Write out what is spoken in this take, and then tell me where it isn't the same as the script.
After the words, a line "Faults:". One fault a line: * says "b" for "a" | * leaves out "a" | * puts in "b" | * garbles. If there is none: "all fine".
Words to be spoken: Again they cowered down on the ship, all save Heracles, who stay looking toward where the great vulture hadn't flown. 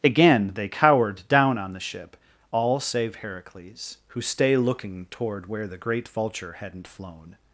Again they cowered down on the ship, all save Heracles, who stay looking toward where the great vulture hadn't flown.
Faults:
all fine